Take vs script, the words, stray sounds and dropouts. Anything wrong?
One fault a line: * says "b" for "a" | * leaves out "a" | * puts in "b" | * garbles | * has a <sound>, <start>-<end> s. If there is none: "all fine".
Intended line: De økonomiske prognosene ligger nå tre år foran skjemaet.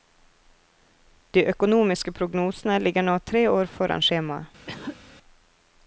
* has a cough, 4.7-5.0 s